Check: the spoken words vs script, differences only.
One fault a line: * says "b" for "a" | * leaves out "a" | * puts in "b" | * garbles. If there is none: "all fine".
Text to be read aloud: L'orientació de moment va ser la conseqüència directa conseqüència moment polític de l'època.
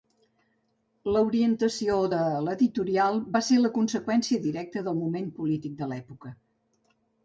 * says "l'editorial" for "moment"
* says "del" for "conseqüència"